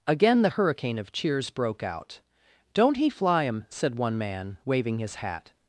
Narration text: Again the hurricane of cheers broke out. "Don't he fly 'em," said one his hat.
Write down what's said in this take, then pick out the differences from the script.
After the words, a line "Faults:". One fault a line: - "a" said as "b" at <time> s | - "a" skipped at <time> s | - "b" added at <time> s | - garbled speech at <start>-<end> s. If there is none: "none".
Again the hurricane of cheers broke out. "Don't he fly 'em," said one man, waving his hat.
Faults:
- "man waving" added at 4.2 s